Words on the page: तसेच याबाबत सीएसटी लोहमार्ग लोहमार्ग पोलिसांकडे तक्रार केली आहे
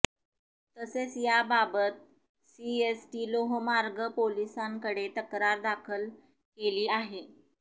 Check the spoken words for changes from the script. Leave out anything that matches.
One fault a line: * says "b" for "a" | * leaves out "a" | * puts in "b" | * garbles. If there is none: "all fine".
* leaves out "लोहमार्ग"
* puts in "दाखल"